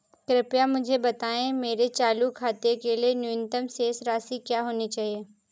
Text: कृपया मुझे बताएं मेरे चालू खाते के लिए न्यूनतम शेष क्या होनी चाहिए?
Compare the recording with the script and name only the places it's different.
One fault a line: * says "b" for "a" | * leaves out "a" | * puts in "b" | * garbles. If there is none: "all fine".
* puts in "राशि"